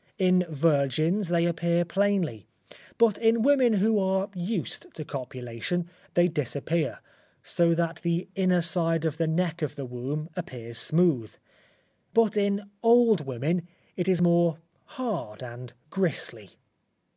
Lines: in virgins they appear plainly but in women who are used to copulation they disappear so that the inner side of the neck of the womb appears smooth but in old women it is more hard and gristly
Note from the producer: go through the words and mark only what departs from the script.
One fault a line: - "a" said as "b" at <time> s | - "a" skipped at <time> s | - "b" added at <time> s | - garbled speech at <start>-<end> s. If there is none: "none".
none